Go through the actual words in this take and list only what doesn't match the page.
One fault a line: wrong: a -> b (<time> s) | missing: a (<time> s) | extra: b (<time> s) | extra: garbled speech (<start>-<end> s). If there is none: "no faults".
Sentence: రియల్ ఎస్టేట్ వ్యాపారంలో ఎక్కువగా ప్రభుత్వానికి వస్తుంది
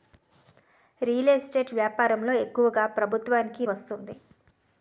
no faults